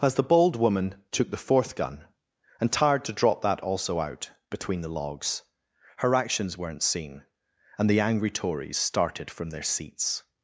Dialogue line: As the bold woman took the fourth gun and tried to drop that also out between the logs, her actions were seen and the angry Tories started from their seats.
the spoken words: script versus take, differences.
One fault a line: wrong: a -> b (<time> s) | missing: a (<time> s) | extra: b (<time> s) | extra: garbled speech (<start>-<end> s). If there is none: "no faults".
wrong: tried -> tired (2.7 s)
wrong: were -> weren't (6.6 s)